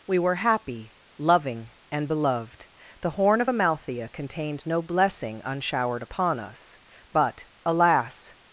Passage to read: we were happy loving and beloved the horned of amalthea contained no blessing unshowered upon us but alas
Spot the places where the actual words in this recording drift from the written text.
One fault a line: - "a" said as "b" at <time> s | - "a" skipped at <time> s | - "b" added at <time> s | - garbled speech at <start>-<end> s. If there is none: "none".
- "horned" said as "horn" at 3.1 s